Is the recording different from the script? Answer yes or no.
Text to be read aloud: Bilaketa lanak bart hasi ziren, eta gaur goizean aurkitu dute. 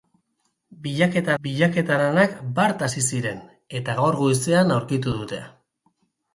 yes